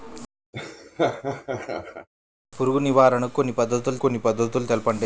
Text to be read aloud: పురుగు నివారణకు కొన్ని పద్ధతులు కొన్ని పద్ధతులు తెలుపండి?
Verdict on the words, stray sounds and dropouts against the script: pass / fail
fail